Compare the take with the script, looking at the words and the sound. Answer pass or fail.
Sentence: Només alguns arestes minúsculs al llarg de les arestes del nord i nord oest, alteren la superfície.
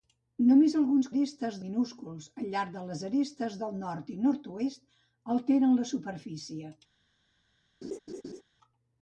fail